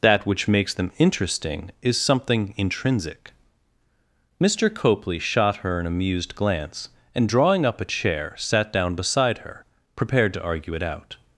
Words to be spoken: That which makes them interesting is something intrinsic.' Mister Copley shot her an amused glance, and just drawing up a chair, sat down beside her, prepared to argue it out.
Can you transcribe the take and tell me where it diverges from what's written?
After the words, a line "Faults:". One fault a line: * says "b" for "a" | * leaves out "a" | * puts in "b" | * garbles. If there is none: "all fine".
That which makes them interesting is something intrinsic.' Mister Copley shot her an amused glance, and drawing up a chair, sat down beside her, prepared to argue it out.
Faults:
* leaves out "just"